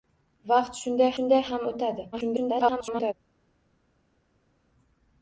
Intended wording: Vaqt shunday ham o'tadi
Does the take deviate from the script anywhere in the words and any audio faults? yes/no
yes